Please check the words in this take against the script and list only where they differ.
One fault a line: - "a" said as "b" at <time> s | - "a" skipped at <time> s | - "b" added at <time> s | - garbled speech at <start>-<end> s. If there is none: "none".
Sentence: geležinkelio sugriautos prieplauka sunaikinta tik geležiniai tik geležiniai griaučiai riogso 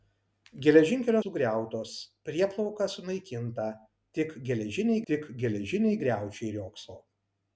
none